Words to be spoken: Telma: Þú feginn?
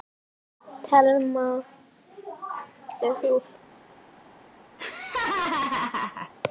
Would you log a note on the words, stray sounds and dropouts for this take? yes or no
yes